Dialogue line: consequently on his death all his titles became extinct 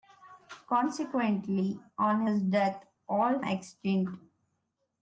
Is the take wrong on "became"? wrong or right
wrong